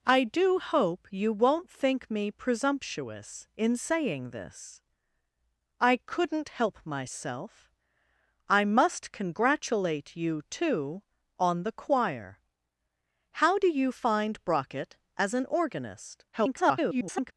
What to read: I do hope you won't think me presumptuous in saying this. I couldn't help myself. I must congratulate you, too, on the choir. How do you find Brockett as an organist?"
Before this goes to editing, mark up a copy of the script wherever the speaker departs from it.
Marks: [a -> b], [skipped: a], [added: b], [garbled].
I do hope you won't think me presumptuous in saying this. I couldn't help myself. I must congratulate you, too, on the choir. How do you find Brockett as an organist?" [garbled]